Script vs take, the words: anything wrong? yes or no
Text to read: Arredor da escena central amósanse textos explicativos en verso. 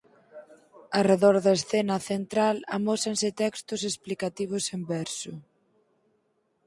no